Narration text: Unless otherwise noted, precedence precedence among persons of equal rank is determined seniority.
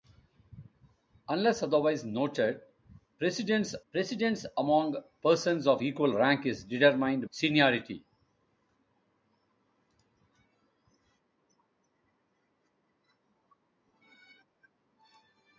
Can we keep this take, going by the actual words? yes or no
yes